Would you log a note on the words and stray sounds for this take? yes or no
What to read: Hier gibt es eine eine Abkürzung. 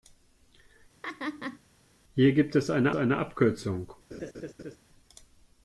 yes